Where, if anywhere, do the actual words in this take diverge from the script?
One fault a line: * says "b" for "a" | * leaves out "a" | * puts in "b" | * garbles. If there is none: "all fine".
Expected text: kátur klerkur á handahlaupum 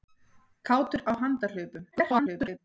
* leaves out "klerkur"
* garbles